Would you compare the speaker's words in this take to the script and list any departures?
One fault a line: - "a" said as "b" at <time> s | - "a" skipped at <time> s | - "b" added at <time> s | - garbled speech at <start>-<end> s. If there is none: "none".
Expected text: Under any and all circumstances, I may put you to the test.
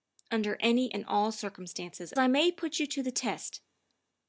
none